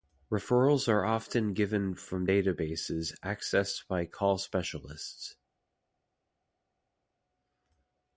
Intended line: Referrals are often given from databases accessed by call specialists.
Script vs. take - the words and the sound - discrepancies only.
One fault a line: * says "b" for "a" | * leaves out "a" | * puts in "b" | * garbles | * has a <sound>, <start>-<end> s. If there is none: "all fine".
all fine